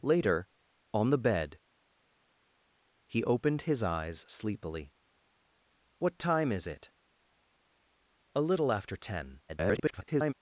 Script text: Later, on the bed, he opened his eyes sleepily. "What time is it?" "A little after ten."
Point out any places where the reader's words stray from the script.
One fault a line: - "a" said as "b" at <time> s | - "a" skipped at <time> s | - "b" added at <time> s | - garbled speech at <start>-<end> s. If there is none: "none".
- garbled speech at 9.5-10.3 s